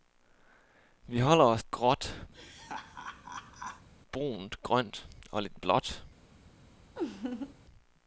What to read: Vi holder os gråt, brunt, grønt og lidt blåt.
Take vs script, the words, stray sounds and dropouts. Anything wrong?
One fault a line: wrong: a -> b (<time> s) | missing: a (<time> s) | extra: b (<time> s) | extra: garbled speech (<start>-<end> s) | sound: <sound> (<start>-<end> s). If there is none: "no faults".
sound: laugh (2.3-3.9 s)
sound: laugh (7.0-7.5 s)